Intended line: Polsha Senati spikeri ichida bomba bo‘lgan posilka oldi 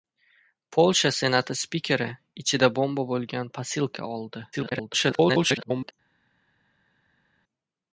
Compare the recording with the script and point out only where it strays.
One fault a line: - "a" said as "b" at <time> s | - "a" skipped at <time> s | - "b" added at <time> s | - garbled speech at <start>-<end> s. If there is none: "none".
- garbled speech at 4.5-5.9 s